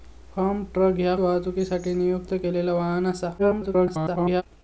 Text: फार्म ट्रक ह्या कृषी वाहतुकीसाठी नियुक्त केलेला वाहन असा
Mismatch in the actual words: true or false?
true